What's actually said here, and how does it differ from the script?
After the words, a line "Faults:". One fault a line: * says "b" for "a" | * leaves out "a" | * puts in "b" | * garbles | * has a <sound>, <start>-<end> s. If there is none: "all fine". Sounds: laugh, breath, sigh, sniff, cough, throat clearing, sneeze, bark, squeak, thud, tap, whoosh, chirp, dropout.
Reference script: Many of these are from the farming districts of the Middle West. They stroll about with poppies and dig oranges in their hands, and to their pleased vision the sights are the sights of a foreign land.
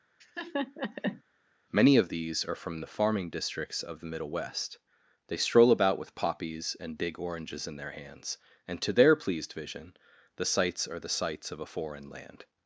Many of these are from the farming districts of the Middle West. They stroll about with poppies and dig oranges in their hands, and to their pleased vision the sights are the sights of a foreign land.
Faults:
* has a laugh, 0.2-1.2 s